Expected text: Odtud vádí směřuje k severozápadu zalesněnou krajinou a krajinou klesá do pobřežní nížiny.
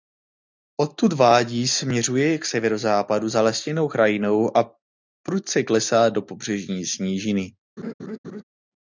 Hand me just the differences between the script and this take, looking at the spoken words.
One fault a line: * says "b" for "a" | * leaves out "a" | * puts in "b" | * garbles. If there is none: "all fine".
* says "prudce" for "krajinou"